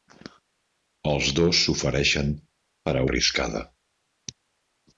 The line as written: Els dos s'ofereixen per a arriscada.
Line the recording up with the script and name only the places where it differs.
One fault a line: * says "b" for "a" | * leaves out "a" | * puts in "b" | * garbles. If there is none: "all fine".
all fine